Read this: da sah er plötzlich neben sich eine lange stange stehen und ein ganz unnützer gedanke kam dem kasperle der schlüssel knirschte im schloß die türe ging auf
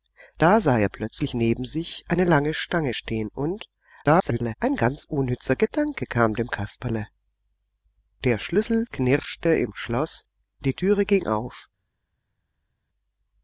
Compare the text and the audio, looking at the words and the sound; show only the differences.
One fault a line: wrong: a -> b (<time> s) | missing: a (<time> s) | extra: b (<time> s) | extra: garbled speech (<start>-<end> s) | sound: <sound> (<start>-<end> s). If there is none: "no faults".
extra: garbled speech (4.0-4.5 s)